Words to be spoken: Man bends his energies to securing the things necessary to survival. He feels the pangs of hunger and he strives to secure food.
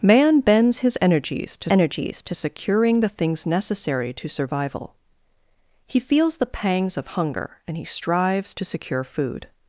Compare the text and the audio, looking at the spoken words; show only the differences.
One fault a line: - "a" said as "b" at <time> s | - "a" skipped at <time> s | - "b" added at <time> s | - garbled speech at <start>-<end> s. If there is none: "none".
- "energies to" added at 1.7 s